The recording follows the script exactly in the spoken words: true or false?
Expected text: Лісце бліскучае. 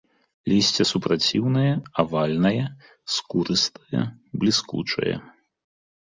false